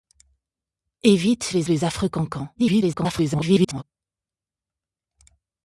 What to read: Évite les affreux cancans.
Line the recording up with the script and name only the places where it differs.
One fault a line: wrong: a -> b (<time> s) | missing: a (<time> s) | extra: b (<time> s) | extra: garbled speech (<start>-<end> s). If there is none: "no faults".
extra: les (1.7 s)
extra: garbled speech (2.6-3.8 s)